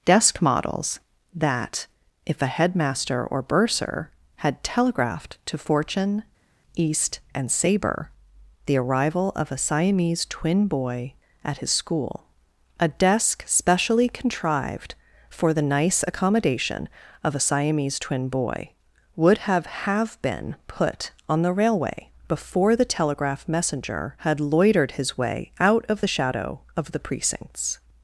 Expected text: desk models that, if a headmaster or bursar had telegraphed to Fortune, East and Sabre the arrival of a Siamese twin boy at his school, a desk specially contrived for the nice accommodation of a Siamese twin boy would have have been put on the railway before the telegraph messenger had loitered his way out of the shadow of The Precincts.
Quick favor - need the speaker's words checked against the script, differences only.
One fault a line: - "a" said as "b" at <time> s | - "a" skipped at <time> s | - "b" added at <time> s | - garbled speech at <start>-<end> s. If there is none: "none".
none